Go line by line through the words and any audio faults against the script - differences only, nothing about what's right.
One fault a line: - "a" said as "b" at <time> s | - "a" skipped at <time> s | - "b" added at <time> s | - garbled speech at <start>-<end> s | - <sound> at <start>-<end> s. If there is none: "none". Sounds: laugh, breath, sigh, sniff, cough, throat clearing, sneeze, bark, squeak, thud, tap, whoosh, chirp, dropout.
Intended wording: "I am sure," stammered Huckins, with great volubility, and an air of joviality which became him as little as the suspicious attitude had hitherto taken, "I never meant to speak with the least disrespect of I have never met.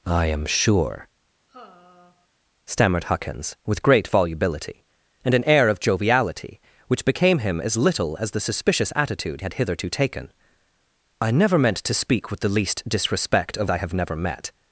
- sigh at 1.5-2.3 s